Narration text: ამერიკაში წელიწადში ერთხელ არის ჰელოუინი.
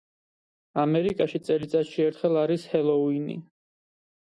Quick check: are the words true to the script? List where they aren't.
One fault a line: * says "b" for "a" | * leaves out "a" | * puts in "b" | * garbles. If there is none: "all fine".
all fine